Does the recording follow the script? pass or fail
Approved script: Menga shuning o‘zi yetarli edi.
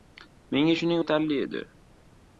fail